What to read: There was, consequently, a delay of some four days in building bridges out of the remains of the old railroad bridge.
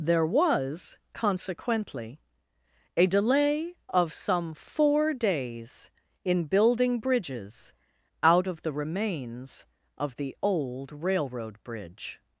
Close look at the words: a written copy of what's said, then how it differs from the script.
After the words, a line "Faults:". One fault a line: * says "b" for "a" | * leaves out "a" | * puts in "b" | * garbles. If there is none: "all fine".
There was, consequently, a delay of some four days in building bridges out of the remains of the old railroad bridge.
Faults:
all fine